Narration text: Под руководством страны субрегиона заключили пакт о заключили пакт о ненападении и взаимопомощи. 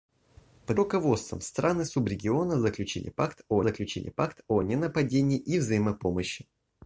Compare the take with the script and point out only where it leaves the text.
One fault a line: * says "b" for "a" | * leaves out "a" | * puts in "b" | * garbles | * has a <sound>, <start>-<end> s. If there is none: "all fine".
all fine